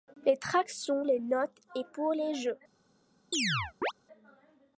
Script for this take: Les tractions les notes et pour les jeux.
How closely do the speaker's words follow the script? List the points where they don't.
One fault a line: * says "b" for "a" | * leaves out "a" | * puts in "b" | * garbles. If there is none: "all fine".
all fine